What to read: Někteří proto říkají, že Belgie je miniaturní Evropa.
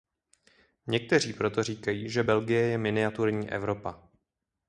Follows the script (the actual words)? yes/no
yes